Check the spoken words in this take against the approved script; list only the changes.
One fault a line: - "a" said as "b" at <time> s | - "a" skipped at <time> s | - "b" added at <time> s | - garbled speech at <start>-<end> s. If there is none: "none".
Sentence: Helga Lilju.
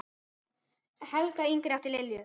- "yngri átti" added at 1.5 s